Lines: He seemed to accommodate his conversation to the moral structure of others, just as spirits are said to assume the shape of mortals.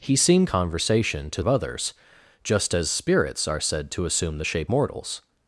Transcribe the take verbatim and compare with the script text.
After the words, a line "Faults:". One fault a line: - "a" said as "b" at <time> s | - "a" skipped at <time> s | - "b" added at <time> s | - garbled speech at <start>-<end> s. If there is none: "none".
He seemed conversation to of others, just as spirits are said to assume the shape mortals.
Faults:
- "to accommodate his" skipped at 0.5 s
- "the moral structure" skipped at 1.4 s
- "of" skipped at 4.7 s